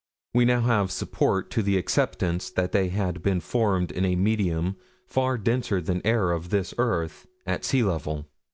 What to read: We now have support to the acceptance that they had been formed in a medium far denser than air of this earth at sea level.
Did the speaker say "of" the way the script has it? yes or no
yes